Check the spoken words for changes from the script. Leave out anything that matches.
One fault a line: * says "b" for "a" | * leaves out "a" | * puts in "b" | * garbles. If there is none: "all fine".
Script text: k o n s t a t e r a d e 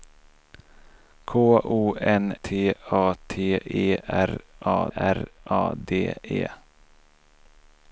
* leaves out "s"
* puts in "r a"